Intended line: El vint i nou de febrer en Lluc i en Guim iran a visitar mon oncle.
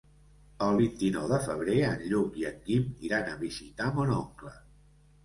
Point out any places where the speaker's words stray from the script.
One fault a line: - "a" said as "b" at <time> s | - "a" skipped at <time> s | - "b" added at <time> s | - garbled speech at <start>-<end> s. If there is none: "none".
none